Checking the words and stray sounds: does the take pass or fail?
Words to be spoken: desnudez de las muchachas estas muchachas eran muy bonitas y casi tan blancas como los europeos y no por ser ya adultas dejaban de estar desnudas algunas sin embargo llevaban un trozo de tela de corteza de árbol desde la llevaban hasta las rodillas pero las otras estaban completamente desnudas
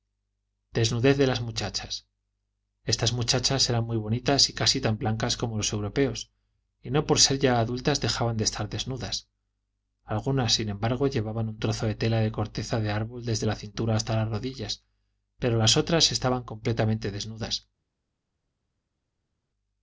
fail